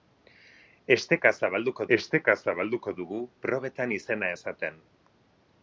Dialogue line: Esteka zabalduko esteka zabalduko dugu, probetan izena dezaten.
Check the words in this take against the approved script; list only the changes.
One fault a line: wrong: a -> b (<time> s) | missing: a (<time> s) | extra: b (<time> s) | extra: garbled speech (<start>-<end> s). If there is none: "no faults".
no faults